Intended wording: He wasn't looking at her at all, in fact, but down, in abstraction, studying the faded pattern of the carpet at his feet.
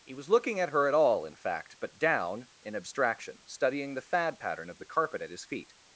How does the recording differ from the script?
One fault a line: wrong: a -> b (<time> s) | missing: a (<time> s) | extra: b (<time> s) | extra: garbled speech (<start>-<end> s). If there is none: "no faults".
wrong: wasn't -> was (0.1 s)
wrong: faded -> fad (4.0 s)